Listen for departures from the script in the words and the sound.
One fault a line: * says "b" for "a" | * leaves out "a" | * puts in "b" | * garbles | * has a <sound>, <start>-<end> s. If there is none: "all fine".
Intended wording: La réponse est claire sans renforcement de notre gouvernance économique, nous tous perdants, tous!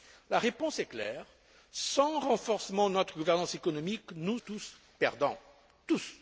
all fine